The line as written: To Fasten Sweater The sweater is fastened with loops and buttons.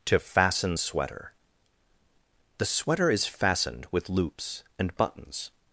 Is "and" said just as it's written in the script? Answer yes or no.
yes